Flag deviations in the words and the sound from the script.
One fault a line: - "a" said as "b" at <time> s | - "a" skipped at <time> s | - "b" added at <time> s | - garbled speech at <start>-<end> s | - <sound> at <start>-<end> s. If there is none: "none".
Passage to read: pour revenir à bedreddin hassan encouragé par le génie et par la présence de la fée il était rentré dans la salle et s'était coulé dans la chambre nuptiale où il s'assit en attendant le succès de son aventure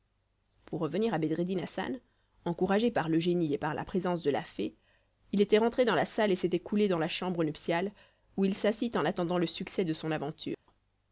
- dropout at 10.5-10.7 s